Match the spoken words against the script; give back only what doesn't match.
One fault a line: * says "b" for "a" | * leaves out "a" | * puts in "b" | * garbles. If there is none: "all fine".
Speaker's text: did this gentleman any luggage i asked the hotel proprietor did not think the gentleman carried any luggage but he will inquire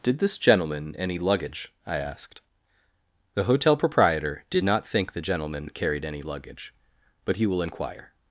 all fine